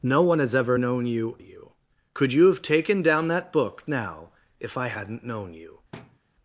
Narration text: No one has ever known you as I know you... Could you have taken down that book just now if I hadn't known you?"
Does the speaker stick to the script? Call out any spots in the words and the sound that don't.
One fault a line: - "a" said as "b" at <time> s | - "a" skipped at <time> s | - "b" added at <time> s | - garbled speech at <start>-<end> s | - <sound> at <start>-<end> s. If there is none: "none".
- "as I know" skipped at 1.4 s
- "just" skipped at 3.9 s
- thud at 5.9-6.2 s